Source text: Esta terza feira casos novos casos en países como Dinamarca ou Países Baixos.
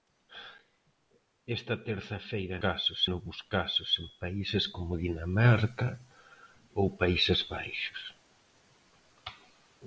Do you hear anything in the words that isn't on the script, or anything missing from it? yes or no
no